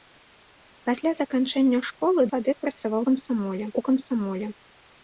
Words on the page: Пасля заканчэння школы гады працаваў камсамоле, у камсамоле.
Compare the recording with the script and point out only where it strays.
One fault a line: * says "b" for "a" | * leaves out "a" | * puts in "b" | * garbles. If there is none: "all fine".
all fine